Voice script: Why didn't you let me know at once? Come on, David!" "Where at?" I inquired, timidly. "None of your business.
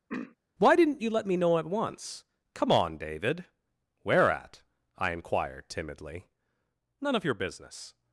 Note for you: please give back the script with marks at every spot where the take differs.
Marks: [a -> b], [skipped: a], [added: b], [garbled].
Why didn't you let me know at once? Come on, David!" "Where at?" I inquired, timidly. "None of your business.